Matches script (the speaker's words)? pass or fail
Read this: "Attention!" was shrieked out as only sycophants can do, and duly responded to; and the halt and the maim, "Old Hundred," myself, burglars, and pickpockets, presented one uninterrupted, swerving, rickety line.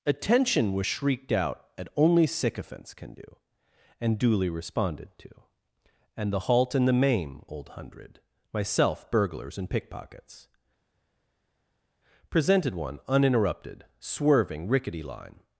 fail